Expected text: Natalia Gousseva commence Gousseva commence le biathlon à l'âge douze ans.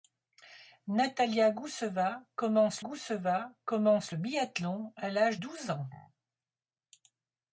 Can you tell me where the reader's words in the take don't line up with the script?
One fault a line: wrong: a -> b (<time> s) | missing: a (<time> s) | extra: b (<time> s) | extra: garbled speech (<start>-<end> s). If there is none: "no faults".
no faults